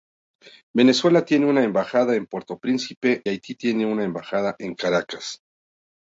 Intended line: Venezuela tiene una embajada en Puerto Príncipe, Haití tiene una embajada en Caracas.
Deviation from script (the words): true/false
false